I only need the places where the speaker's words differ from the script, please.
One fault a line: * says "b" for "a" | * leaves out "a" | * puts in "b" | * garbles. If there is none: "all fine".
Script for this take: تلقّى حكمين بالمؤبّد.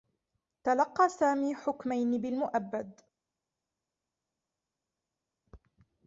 * puts in "سامي"